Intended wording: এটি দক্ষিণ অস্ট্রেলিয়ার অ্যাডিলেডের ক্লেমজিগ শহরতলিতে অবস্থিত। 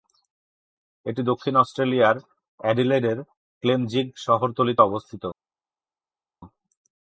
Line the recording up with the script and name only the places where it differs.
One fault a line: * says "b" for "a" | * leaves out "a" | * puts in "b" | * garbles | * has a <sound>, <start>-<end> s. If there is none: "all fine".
all fine